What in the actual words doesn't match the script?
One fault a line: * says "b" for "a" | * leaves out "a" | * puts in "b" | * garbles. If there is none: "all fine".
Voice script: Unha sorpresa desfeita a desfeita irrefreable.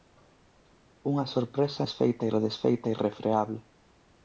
all fine